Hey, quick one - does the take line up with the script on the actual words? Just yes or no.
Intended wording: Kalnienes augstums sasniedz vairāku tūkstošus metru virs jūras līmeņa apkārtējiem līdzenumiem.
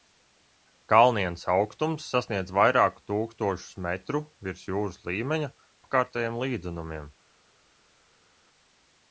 yes